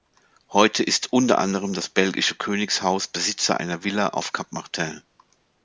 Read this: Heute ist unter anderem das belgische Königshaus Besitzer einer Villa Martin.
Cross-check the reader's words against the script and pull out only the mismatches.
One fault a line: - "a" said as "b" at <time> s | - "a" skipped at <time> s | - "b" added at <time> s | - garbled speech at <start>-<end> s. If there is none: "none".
- "auf Cap" added at 4.1 s